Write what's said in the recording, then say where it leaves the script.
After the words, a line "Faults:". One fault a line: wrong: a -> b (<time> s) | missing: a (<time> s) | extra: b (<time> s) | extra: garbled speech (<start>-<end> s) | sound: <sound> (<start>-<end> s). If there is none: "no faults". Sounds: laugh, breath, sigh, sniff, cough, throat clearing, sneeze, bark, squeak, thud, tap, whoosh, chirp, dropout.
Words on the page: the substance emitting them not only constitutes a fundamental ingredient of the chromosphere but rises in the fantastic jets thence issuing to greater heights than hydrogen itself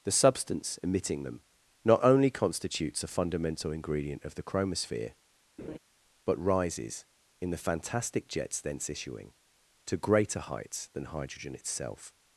the substance emitting them not only constitutes a fundamental ingredient of the chromosphere but rises in the fantastic jets thence issuing to greater heights than hydrogen itself
Faults:
sound: laugh (5.6-5.8 s)